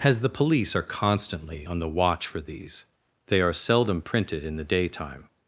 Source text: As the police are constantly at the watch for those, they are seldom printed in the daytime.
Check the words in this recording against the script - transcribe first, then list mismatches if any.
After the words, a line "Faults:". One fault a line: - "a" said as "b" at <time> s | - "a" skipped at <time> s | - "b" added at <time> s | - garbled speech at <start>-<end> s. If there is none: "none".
As the police are constantly on the watch for these, they are seldom printed in the daytime.
Faults:
- "at" said as "on" at 1.6 s
- "those" said as "these" at 2.4 s